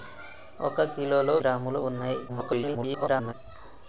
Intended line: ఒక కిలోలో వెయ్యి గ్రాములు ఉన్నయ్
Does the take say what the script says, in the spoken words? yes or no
no